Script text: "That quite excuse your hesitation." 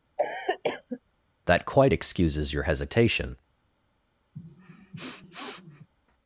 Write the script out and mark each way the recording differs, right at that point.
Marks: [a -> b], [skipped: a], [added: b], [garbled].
"That quite [excuse -> excuses] your hesitation."